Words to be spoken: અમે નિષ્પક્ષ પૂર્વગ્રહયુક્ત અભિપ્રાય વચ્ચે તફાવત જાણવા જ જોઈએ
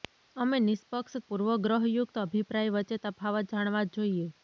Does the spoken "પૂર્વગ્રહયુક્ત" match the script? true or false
true